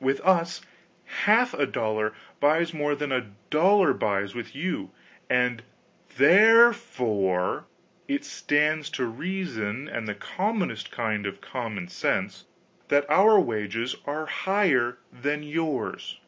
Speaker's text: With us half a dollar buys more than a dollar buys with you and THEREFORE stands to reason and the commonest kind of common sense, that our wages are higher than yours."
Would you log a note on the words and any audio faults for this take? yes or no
yes